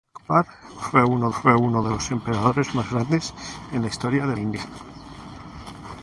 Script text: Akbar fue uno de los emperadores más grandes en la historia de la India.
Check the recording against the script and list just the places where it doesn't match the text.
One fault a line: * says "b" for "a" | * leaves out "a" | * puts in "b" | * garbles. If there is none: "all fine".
* puts in "fue uno"
* leaves out "la"